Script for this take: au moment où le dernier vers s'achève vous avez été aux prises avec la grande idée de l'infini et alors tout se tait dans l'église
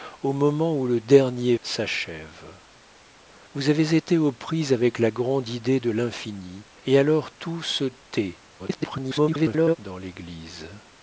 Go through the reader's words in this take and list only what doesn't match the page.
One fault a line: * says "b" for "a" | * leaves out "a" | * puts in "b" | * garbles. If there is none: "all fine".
* leaves out "vers"
* garbles